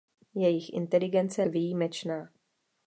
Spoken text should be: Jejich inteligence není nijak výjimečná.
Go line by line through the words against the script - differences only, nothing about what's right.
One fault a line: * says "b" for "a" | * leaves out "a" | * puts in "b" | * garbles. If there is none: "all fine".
* leaves out "není nijak"